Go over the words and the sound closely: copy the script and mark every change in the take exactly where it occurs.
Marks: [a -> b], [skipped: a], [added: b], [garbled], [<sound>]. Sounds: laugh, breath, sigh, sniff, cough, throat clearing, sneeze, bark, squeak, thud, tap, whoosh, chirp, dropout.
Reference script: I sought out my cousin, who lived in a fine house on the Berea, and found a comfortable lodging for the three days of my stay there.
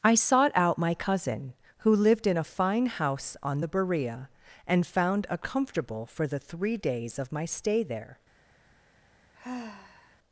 I sought out my cousin, who lived in a fine house on the Berea, and found a comfortable [skipped: lodging] for the three days of my stay there. [sigh]